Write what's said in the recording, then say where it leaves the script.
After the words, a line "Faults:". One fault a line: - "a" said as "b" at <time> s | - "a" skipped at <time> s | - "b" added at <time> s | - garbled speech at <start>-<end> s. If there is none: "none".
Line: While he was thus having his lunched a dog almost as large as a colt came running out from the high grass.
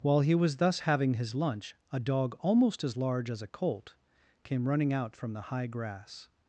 While he was thus having his lunch a dog almost as large as a colt came running out from the high grass.
Faults:
- "lunched" said as "lunch" at 1.3 s